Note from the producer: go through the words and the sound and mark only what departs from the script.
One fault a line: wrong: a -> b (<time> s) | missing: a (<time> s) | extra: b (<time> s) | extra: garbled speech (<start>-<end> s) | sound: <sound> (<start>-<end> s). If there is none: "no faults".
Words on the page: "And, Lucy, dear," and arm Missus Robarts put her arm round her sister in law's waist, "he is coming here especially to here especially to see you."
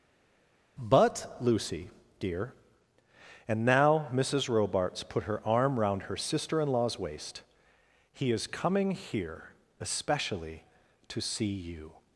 wrong: And -> But (0.8 s)
wrong: arm -> now (3.7 s)
missing: here especially to (11.2 s)